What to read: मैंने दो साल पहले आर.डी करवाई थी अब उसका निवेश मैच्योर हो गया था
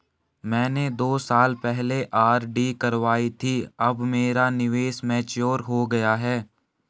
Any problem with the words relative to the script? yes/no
yes